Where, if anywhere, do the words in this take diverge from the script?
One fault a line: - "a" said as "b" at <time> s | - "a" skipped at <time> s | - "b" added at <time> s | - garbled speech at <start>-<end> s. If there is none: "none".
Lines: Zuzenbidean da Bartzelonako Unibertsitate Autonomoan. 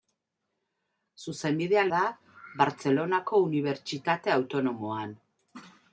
none